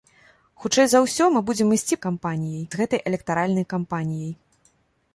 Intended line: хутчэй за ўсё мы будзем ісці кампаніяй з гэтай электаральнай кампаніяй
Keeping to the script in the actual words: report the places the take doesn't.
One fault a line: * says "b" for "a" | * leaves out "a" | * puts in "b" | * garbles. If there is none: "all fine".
all fine